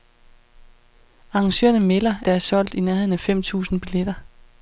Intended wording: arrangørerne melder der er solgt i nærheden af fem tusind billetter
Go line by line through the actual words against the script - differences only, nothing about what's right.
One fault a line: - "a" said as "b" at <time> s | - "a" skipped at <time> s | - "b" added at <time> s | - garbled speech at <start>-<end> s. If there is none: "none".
none